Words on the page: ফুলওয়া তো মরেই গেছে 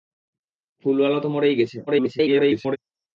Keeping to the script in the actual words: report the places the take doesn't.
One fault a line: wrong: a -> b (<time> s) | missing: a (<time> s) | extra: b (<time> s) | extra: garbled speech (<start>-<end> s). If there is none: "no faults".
extra: garbled speech (1.9-2.8 s)